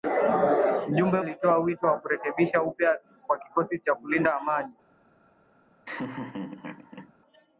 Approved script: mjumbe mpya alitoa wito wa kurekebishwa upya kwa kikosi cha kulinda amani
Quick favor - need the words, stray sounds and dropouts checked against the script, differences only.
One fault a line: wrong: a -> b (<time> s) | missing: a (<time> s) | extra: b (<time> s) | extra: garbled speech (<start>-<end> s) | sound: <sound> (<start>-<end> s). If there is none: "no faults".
missing: mpya (1.2 s)
sound: laugh (5.9-7.1 s)